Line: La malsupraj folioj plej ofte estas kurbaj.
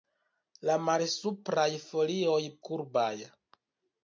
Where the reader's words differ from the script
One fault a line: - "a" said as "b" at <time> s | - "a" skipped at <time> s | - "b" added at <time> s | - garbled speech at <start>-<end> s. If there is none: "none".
- "plej ofte estas" skipped at 2.4 s